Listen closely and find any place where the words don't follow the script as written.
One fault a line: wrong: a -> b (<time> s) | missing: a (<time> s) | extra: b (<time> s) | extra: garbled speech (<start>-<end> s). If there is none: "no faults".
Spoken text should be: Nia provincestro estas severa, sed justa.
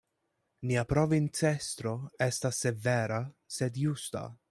no faults